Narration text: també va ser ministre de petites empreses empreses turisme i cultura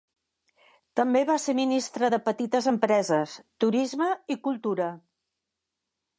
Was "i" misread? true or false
false